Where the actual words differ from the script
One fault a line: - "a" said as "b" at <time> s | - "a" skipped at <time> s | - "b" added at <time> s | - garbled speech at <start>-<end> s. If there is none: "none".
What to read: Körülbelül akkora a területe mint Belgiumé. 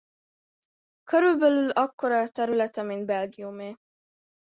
none